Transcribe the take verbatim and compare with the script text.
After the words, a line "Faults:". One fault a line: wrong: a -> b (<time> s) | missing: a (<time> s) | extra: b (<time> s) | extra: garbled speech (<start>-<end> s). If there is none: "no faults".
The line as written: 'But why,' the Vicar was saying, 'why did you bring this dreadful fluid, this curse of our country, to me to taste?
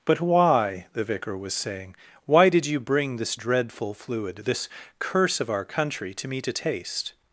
'But why,' the Vicar was saying, 'why did you bring this dreadful fluid, this curse of our country, to me to taste?
Faults:
no faults